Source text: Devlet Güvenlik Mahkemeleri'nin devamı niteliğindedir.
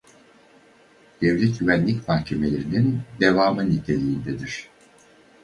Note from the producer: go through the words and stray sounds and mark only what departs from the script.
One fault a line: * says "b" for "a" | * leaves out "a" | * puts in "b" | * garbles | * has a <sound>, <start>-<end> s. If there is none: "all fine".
all fine